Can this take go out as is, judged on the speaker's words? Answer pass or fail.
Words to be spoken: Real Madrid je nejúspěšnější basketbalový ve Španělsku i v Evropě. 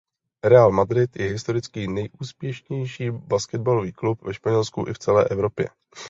fail